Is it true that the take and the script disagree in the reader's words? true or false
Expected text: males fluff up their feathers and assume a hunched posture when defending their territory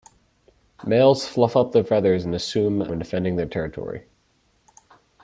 true